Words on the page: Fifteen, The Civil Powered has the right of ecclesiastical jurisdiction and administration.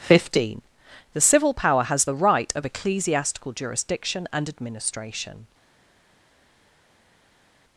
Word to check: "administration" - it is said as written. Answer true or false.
true